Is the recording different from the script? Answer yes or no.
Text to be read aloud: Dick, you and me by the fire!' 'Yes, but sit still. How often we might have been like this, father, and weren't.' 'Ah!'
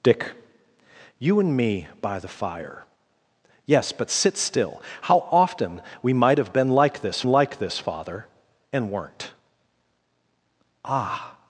yes